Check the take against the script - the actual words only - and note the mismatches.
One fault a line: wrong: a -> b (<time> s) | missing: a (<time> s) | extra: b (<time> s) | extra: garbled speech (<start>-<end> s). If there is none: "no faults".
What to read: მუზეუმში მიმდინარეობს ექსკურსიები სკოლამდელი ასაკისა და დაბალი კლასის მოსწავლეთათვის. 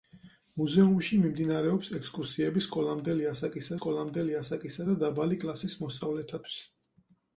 extra: სკოლამდელი ასაკისა (3.8 s)